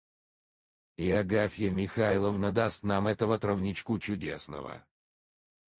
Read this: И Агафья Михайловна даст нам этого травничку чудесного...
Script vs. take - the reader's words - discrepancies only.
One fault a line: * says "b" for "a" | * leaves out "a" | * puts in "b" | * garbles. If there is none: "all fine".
all fine